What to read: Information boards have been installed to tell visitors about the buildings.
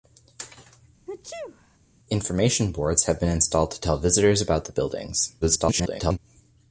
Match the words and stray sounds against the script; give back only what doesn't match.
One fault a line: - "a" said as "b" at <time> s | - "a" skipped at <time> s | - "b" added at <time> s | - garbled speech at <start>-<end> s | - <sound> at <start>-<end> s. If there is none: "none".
- sneeze at 1.1-1.8 s
- garbled speech at 5.4-6.2 s